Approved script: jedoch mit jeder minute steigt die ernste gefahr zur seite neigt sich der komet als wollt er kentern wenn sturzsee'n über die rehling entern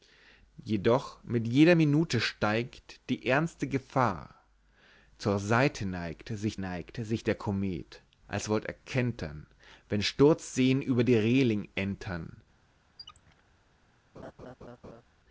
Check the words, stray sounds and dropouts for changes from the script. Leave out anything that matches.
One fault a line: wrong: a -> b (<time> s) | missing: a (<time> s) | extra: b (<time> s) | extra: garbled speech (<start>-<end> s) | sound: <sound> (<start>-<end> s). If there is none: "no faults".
extra: neigt sich (6.5 s)
sound: squeak (13.0-13.4 s)
sound: laugh (14.1-15.0 s)